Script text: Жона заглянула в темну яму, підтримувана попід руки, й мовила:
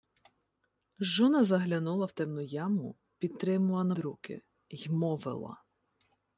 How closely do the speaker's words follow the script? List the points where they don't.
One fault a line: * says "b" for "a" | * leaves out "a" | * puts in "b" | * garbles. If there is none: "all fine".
* leaves out "попід"